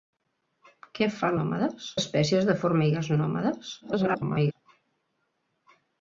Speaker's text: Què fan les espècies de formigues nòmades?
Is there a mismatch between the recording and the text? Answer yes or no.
yes